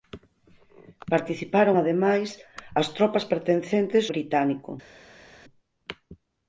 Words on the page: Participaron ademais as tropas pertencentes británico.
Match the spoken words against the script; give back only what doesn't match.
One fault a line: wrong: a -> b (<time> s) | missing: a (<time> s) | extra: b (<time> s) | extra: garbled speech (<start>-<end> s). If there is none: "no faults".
no faults